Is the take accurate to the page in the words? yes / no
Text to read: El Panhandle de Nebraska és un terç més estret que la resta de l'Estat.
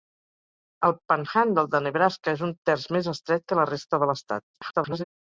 no